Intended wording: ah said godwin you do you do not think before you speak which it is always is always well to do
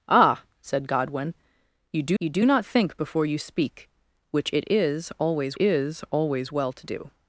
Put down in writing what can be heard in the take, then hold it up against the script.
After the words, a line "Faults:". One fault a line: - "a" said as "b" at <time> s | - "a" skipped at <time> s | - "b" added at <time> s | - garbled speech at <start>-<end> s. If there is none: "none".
ah said godwin you do you do not think before you speak which it is always is always well to do
Faults:
none